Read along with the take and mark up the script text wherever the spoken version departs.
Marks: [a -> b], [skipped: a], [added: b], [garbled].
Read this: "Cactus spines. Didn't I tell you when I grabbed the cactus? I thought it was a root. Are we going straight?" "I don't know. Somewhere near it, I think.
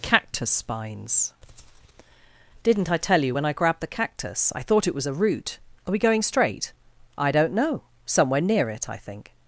"Cactus spines. Didn't I tell you when I grabbed the cactus? I thought it was a root. Are we going straight?" "I don't know. Somewhere near it, I think.